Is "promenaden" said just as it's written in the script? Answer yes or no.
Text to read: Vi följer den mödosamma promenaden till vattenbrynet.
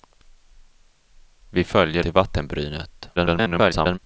no